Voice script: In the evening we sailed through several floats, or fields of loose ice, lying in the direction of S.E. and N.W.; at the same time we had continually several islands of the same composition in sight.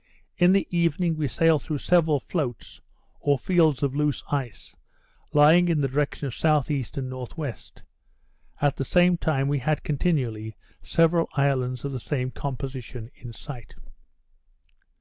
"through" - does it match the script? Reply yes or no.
yes